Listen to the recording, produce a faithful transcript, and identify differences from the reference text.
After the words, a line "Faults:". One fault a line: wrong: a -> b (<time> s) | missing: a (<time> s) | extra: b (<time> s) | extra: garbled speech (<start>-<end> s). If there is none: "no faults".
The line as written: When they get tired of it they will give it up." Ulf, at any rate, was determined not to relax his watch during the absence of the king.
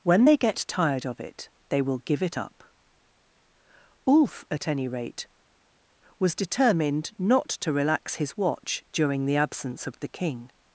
When they get tired of it they will give it up." Ulf, at any rate, was determined not to relax his watch during the absence of the king.
Faults:
no faults